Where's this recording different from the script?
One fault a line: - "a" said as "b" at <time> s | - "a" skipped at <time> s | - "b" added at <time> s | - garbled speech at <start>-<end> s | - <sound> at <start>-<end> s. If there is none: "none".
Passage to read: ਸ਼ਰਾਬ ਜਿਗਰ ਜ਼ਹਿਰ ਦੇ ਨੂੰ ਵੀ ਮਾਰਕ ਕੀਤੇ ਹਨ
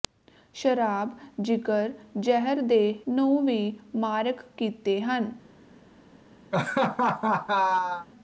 - laugh at 6.5-8.1 s